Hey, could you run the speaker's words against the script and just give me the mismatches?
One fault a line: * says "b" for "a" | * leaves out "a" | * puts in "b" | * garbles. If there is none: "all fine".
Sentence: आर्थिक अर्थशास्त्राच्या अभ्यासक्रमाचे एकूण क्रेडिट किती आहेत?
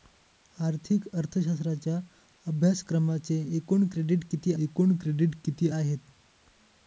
* puts in "एकूण क्रेडिट किती"